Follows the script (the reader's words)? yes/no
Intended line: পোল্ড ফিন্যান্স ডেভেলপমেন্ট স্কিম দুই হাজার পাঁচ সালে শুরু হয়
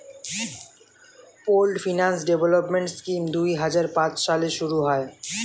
yes